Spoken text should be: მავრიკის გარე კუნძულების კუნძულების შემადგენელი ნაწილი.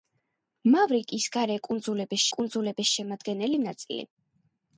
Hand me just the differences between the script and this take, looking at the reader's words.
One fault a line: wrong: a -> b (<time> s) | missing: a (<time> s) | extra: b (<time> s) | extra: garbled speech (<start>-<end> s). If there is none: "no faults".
no faults